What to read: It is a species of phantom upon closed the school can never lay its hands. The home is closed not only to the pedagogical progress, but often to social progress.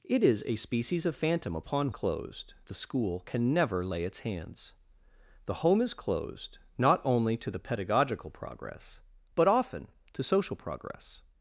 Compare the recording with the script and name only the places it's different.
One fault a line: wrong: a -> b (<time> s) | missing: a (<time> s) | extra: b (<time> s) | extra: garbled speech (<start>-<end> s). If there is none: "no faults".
no faults